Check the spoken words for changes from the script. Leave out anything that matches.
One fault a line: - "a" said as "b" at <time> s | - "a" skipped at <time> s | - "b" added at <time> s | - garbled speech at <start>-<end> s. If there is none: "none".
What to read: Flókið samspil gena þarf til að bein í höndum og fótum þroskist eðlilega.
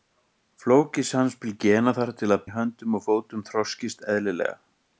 - "bein" skipped at 2.5 s